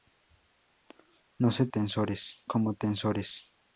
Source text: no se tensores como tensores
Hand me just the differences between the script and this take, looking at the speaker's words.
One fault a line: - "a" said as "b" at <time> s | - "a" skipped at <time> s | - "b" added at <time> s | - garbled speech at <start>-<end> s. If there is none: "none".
none